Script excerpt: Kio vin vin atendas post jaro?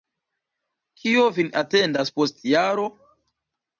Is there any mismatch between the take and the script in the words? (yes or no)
yes